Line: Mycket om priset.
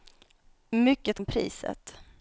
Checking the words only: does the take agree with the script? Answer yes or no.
yes